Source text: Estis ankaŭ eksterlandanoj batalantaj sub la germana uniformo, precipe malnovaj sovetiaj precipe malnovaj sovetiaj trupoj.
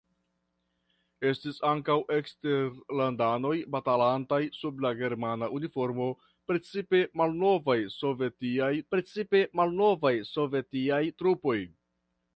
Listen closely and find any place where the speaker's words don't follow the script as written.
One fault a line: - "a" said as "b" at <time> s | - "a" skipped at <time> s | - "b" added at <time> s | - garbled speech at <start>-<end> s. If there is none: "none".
none